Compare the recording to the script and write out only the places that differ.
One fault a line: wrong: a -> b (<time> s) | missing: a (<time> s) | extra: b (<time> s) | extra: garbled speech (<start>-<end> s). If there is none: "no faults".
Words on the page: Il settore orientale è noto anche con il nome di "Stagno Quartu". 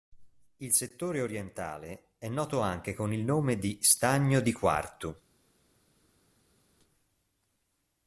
extra: di (4.4 s)